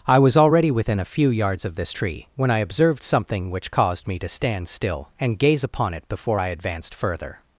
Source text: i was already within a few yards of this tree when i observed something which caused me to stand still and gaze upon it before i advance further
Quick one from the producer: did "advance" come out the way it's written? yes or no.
no